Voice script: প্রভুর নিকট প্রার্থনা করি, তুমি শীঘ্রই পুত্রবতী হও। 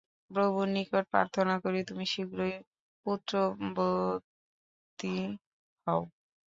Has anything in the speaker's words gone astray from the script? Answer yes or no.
no